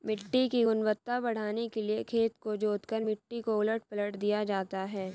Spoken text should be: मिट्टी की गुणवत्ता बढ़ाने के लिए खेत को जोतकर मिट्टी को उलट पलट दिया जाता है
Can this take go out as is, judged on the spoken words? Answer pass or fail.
pass